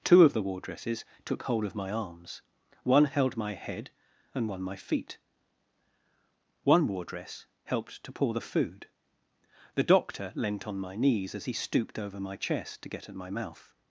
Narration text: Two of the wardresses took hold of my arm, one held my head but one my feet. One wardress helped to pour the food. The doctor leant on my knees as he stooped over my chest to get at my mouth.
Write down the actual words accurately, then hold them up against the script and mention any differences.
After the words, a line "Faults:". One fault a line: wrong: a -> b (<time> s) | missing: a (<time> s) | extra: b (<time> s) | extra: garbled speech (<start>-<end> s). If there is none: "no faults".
Two of the wardresses took hold of my arms, one held my head and one my feet. One wardress helped to pour the food. The doctor leant on my knees as he stooped over my chest to get at my mouth.
Faults:
wrong: arm -> arms (1.9 s)
wrong: but -> and (4.3 s)